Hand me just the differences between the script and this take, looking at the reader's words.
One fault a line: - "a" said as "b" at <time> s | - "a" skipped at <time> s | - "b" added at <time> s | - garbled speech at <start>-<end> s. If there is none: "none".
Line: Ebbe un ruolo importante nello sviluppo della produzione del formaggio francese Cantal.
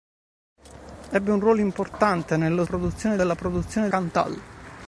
- "sviluppo" said as "produzione" at 2.6 s
- "del formaggio francese" skipped at 3.9 s